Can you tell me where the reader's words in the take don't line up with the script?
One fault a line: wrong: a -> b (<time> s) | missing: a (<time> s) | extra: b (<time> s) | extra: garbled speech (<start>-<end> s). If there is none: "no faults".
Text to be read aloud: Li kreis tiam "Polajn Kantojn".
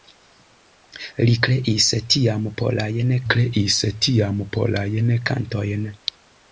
extra: kreis tiam Polajn (3.3 s)